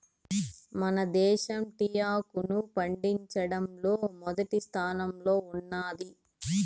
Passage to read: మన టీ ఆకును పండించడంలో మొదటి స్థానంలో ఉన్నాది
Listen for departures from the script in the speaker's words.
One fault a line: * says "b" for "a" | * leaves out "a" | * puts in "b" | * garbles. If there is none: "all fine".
* puts in "దేశం"